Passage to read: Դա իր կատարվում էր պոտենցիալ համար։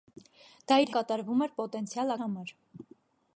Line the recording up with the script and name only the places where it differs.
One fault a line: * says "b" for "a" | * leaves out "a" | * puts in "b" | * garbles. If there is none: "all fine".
all fine